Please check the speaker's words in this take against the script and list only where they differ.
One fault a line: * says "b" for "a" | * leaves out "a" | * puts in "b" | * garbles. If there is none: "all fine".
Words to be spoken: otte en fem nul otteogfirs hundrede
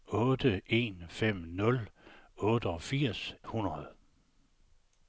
all fine